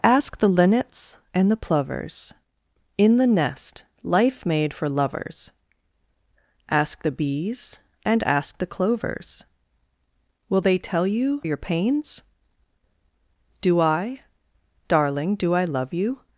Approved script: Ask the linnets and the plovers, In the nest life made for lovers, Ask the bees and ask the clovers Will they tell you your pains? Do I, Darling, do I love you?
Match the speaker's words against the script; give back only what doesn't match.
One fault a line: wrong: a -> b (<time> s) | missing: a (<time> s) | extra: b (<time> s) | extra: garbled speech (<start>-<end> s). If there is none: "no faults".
no faults